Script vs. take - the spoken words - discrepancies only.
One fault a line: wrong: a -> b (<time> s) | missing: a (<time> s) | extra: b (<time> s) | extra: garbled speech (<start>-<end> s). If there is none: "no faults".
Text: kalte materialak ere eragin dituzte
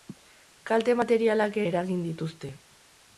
missing: ere (1.6 s)